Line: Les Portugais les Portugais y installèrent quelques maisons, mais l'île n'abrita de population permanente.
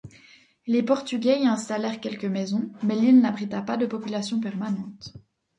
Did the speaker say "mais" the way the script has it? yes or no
yes